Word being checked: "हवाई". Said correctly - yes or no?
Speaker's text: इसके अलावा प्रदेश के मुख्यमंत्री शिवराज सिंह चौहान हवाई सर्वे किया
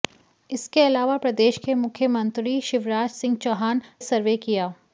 no